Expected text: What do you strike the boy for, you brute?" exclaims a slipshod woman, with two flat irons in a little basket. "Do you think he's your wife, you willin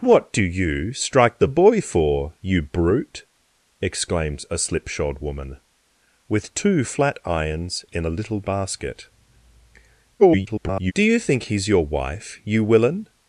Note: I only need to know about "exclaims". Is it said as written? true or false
true